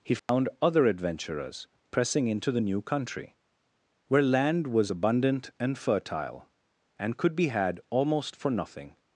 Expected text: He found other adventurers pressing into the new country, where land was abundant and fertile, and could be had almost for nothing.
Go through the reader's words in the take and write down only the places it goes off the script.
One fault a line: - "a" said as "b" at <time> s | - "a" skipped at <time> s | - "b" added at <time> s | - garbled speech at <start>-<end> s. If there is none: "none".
none